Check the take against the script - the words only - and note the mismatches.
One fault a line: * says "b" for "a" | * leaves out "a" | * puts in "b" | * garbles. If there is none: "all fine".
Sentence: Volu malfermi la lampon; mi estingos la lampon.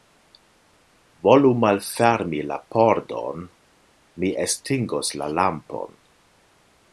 * says "pordon" for "lampon"